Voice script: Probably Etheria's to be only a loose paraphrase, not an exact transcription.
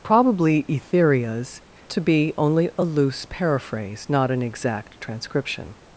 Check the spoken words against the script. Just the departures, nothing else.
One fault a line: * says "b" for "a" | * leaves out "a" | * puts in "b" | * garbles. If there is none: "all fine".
all fine